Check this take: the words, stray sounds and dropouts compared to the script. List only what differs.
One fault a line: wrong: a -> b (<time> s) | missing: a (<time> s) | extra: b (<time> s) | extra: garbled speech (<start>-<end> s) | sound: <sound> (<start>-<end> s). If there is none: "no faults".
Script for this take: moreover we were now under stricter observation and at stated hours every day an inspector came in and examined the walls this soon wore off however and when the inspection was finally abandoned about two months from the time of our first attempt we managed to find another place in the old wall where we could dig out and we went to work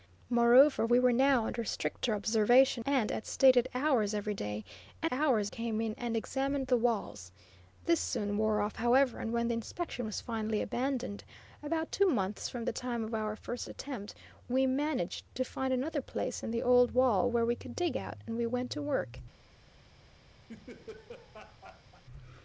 wrong: inspector -> hours (5.1 s)
sound: laugh (20.5-22.0 s)